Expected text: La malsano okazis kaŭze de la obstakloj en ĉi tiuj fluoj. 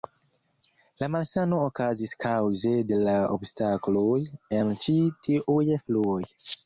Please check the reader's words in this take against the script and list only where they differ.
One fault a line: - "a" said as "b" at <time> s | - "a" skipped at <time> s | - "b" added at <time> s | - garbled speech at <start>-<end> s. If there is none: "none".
none